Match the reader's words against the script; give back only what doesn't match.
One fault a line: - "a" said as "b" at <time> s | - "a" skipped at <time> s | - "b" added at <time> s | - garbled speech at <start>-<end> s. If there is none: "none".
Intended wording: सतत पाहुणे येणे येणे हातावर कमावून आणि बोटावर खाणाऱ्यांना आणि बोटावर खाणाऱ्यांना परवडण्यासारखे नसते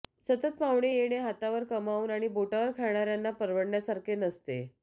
- "येणे" skipped at 1.2 s
- "आणि बोटावर खाणाऱ्यांना" skipped at 3.3 s